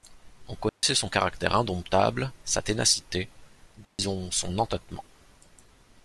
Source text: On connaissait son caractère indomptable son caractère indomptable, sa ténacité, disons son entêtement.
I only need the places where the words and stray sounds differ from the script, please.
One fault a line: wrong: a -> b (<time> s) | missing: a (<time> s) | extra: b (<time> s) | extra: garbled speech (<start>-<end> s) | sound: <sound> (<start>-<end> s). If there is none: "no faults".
sound: dropout (0.7-0.8 s)
missing: son caractère indomptable (2.3 s)
sound: dropout (3.8-4.0 s)